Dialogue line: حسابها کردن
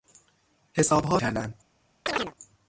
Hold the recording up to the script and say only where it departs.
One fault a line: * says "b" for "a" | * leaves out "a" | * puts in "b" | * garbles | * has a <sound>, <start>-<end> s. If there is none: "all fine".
* has a chirp, 2.1-2.3 s